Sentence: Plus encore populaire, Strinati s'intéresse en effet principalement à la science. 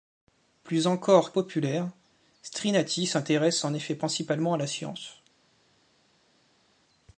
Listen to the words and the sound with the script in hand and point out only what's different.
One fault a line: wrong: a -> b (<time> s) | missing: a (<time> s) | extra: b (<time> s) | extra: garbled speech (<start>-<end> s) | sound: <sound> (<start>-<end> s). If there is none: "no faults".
no faults